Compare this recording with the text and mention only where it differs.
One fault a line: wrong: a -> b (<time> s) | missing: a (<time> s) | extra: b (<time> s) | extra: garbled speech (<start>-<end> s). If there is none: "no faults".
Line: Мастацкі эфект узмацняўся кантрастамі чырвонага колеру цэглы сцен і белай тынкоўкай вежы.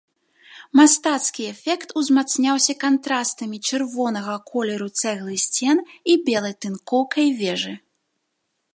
no faults